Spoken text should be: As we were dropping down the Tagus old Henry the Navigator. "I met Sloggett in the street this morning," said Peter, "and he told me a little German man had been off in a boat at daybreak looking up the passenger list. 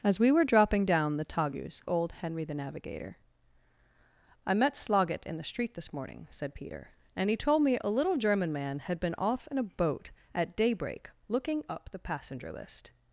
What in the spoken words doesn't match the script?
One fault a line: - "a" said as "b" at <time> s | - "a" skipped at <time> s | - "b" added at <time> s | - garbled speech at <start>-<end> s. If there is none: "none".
none